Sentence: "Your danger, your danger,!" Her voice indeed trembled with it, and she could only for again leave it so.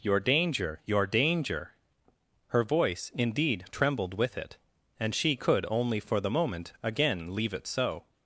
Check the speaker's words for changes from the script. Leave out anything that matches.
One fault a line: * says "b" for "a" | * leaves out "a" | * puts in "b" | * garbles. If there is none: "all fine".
* puts in "the moment"